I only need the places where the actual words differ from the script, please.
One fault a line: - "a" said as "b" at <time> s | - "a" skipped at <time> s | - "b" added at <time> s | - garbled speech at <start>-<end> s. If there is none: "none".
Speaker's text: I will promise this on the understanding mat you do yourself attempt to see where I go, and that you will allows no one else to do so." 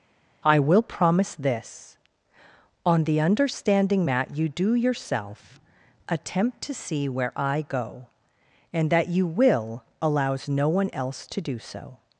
none